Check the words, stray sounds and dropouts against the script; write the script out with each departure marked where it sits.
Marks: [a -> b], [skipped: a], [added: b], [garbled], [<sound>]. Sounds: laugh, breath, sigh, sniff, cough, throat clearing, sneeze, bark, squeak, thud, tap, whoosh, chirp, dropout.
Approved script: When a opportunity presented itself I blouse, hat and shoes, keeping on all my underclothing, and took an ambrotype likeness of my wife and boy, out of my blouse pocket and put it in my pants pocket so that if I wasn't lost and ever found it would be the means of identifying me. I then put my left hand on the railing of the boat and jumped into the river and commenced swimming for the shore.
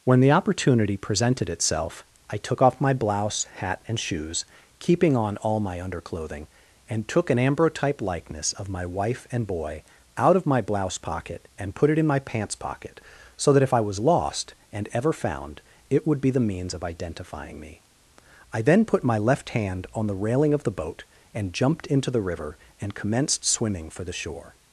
When [a -> the] opportunity presented itself I [added: took off my] blouse, hat and shoes, keeping on all my underclothing, and took an ambrotype likeness of my wife and boy, out of my blouse pocket and put it in my pants pocket so that if I [wasn't -> was] lost and ever found it would be the means of identifying me. I then put my left hand on the railing of the boat and jumped into the river and commenced swimming for the shore.